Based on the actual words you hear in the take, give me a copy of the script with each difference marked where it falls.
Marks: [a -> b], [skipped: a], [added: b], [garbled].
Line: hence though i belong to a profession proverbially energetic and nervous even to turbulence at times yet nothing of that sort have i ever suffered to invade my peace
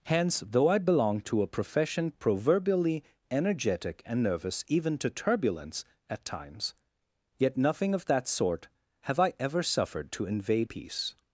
hence though i belong to a profession proverbially energetic and nervous even to turbulence at times yet nothing of that sort have i ever suffered to invade [skipped: my] peace